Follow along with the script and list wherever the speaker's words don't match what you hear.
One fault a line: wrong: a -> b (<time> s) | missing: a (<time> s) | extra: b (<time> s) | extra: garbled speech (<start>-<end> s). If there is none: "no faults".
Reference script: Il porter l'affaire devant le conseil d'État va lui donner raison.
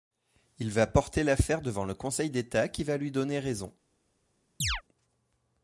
extra: va (0.7 s)
extra: qui (2.7 s)